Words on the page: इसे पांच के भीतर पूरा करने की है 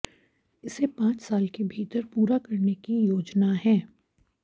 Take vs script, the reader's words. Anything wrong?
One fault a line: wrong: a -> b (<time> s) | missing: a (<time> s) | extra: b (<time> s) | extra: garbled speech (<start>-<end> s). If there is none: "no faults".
extra: साल (1.2 s)
extra: योजना (3.0 s)